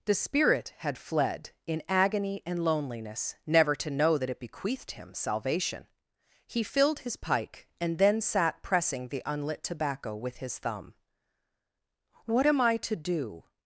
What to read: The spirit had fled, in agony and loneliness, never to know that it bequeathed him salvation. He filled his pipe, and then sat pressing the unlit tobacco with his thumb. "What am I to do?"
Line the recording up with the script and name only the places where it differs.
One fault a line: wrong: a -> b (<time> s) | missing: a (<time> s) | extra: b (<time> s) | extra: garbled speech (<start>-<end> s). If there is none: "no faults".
wrong: pipe -> pike (7.2 s)